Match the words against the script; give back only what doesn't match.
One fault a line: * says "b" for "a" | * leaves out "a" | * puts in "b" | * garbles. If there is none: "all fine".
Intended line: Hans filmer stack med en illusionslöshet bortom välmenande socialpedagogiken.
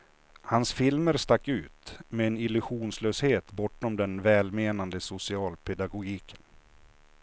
* puts in "ut"
* puts in "den"